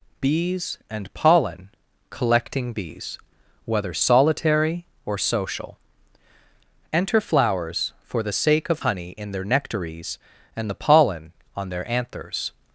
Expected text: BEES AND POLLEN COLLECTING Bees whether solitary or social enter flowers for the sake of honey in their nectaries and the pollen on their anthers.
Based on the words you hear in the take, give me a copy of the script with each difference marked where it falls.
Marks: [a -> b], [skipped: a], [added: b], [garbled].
BEES AND POLLEN COLLECTING Bees whether solitary or social enter flowers for the sake of honey in their nectaries and the pollen on their anthers.